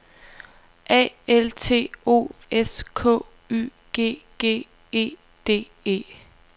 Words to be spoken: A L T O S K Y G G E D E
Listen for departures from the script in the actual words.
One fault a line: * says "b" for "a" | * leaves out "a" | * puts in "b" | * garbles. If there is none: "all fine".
all fine